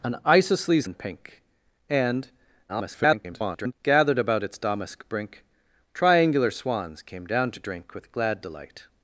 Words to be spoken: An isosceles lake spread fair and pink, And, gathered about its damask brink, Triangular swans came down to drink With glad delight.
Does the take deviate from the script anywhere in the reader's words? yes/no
yes